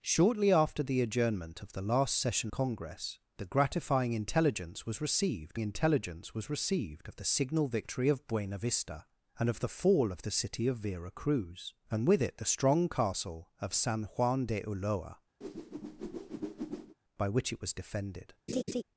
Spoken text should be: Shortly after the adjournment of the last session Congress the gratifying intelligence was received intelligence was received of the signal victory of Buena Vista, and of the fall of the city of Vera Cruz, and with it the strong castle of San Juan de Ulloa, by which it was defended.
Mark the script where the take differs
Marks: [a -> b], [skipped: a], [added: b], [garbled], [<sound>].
Shortly after the adjournment of the last session Congress the gratifying intelligence was received intelligence was received of the signal victory of Buena Vista, and of the fall of the city of Vera Cruz, and with it the strong castle of San Juan de Ulloa, [whoosh] by which it was defended. [laugh]